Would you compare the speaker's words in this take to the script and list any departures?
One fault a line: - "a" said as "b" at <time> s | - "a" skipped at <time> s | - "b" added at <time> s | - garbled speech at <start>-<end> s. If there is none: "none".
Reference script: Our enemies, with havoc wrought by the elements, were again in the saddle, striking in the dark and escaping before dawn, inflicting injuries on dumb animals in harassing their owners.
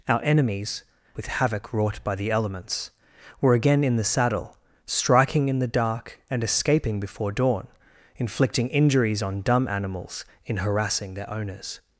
none